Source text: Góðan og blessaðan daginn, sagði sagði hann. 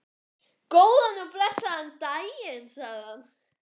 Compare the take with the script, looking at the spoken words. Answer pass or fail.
fail